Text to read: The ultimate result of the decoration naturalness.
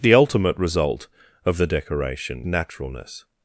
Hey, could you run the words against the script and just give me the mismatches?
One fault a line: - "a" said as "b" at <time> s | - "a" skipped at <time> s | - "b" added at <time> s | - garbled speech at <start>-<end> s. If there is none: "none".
none